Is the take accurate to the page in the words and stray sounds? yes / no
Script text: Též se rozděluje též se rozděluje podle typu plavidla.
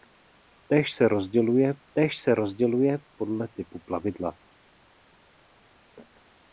yes